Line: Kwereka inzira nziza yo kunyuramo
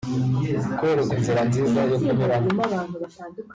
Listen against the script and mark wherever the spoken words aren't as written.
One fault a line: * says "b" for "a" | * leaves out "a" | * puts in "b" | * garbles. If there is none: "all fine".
all fine